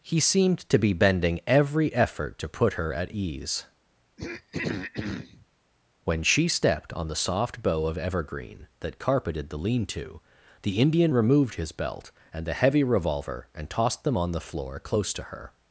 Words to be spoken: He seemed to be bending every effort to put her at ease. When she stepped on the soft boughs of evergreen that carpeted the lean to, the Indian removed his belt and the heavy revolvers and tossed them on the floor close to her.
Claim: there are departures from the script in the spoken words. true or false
true